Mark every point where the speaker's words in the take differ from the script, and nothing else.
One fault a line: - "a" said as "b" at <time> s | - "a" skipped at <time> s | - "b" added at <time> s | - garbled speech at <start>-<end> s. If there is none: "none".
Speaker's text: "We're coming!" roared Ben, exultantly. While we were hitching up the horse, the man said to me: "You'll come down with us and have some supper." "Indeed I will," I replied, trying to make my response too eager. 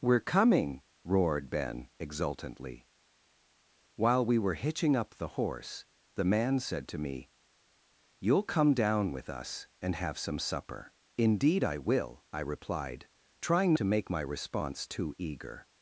none